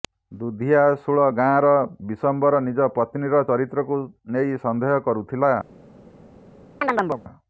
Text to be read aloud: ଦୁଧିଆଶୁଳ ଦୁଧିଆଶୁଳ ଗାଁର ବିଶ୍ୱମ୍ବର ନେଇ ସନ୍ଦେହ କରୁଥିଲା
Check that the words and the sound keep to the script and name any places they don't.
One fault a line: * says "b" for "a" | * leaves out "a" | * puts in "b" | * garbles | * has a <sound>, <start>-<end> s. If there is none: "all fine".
* leaves out "ଦୁଧିଆଶୁଳ"
* puts in "ନିଜ ପତ୍ନୀର ଚରିତ୍ରକୁ"
* has a chirp, 6.8-7.2 s